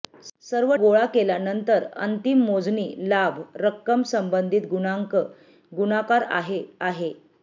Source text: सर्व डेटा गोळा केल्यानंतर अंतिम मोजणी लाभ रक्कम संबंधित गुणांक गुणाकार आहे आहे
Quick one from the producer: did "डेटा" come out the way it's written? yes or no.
no